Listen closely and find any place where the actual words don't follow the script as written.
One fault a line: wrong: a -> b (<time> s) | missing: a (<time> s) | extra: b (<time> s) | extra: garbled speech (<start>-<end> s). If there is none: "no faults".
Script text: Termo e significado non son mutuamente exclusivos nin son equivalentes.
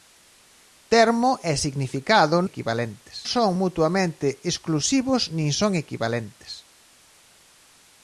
wrong: non -> equivalentes (2.5 s)